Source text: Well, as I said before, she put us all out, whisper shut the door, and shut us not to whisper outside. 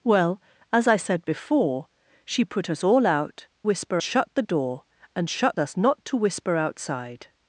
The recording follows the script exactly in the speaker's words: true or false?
true